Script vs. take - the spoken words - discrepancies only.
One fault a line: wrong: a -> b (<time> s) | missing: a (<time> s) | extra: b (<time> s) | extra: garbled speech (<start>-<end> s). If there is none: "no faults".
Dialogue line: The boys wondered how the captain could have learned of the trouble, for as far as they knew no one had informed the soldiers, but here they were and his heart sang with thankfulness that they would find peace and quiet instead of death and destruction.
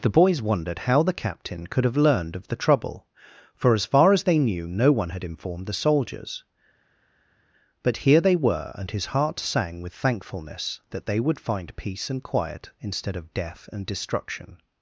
no faults